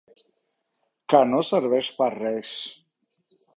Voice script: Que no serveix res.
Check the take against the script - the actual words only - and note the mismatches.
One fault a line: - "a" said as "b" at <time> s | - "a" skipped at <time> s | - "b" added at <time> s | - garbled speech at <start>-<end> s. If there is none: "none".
- "per" added at 2.0 s